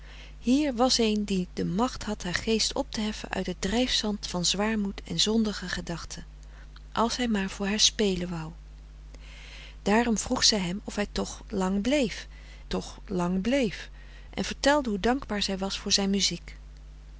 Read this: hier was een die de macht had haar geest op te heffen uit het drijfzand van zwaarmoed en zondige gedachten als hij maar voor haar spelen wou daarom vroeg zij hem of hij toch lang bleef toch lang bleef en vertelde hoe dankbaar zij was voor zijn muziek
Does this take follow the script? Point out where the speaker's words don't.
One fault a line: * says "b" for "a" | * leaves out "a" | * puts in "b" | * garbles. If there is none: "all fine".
all fine